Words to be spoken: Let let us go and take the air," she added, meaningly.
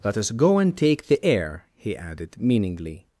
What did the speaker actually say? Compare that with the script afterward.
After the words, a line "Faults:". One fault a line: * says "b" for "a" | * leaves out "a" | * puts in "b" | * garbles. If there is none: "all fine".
Let us go and take the air," he added, meaningly.
Faults:
* leaves out "let"
* says "he" for "she"